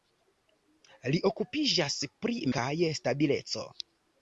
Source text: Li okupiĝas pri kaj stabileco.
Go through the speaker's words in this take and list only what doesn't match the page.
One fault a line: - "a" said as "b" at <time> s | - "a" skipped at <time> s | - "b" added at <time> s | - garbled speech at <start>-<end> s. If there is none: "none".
none